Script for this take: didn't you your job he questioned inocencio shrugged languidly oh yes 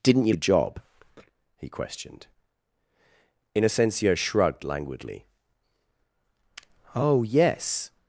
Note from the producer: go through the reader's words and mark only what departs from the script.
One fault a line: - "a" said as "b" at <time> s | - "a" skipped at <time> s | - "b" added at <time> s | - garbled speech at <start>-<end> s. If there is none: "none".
none